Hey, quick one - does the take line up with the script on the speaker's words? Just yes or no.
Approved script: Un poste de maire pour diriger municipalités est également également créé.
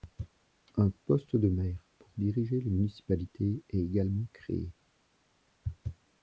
no